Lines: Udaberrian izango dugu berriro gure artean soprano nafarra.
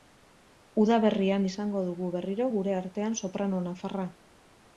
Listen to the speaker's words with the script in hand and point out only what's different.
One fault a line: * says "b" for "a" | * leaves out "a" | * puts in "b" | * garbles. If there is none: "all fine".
all fine